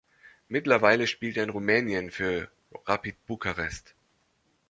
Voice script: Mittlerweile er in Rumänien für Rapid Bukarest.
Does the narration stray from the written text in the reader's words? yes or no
yes